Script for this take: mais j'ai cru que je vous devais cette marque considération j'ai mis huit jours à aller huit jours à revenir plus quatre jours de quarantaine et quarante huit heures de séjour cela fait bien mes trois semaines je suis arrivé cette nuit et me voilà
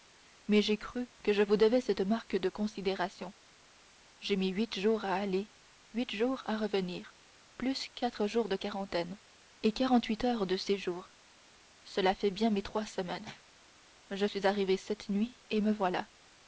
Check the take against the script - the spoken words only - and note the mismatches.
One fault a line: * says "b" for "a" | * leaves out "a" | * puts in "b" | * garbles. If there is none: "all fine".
* puts in "de"